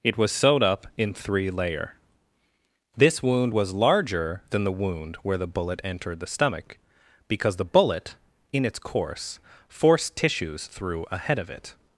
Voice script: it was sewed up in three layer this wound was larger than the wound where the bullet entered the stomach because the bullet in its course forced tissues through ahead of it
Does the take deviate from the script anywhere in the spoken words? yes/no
no